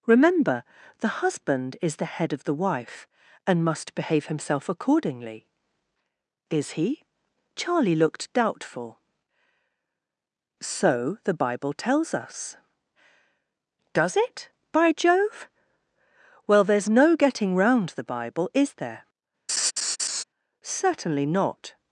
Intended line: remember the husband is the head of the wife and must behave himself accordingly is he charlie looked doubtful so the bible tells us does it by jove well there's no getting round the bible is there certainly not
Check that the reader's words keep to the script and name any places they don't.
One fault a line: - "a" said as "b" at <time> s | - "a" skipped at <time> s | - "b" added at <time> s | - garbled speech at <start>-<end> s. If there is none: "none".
none